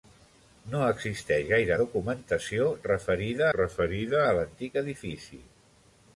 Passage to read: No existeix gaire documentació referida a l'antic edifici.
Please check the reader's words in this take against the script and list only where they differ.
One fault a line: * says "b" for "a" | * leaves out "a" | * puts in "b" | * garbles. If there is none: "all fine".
* puts in "referida"